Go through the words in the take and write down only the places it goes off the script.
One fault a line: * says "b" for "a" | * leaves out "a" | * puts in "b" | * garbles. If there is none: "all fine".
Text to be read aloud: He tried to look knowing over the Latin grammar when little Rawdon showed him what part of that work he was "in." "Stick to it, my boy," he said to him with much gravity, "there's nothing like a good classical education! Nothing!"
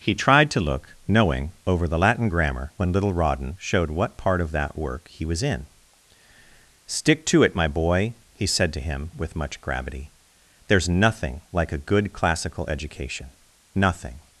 * leaves out "him"